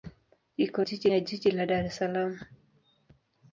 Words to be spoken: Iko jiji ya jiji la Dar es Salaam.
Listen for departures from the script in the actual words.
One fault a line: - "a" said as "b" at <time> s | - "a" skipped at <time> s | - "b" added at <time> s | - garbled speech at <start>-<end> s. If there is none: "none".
none